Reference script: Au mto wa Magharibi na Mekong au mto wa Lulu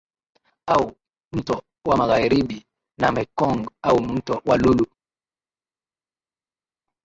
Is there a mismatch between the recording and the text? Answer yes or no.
no